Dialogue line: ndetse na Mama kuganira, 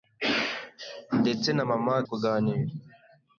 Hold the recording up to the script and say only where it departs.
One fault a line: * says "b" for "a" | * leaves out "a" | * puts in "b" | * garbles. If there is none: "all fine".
all fine